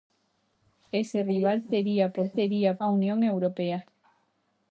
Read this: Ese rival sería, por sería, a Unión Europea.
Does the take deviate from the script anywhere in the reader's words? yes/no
no